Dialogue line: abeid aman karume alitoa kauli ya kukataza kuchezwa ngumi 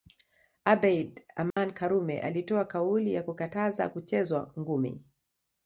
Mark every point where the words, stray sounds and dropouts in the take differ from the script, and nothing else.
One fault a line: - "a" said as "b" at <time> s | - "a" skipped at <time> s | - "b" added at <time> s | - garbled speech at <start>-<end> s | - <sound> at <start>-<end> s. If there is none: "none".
- dropout at 1.5-1.6 s